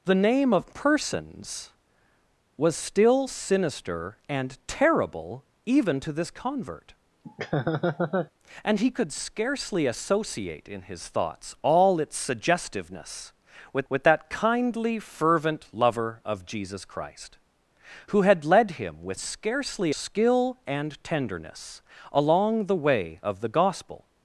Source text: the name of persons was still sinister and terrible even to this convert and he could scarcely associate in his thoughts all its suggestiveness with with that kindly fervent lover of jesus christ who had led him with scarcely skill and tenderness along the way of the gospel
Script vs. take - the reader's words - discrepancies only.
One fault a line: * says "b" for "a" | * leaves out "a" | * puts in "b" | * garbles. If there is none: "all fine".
all fine